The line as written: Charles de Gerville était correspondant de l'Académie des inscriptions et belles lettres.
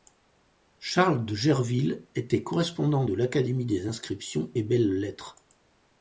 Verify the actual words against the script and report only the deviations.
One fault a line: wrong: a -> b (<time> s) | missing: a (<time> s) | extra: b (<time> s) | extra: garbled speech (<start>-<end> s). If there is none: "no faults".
no faults